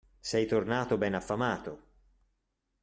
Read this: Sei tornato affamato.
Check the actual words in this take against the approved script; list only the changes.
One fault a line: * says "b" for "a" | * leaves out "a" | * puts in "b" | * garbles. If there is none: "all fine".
* puts in "ben"